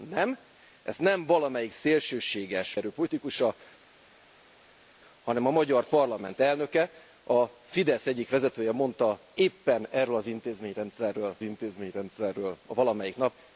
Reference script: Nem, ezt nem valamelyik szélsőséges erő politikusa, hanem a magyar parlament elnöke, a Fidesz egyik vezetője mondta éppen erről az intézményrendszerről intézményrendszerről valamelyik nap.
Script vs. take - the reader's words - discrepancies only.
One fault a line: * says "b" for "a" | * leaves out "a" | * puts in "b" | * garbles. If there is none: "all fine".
all fine